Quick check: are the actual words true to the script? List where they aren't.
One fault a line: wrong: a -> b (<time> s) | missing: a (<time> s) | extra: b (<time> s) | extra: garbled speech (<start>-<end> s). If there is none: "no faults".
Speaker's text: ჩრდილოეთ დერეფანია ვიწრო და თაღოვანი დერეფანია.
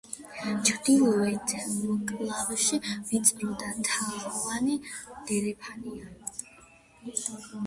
wrong: დერეფანია -> მკლავში (1.9 s)